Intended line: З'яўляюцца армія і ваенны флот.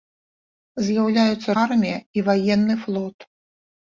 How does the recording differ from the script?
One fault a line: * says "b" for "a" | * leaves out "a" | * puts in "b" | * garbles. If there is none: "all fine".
all fine